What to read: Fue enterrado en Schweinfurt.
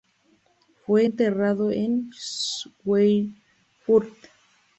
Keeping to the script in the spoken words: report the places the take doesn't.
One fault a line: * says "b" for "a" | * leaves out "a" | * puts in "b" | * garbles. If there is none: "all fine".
all fine